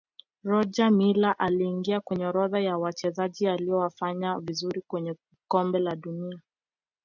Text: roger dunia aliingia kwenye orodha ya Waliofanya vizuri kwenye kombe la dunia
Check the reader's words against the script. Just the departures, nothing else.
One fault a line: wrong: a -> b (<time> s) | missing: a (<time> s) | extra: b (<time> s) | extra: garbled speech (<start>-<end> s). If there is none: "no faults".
wrong: dunia -> miller (0.9 s)
extra: Wachezaji (2.8 s)